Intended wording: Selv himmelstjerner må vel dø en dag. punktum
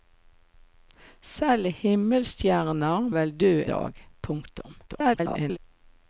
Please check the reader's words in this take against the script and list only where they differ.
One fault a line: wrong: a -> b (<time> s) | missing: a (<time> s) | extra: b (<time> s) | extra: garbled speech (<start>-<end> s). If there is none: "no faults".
missing: må (3.1 s)
missing: en (3.5 s)
extra: garbled speech (4.9-5.6 s)